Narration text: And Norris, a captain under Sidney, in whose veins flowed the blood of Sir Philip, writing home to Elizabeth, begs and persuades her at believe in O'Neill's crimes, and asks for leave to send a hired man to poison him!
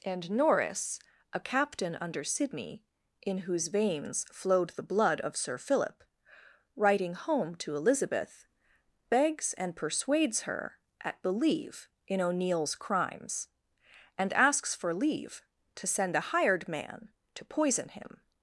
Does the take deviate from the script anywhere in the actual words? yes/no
no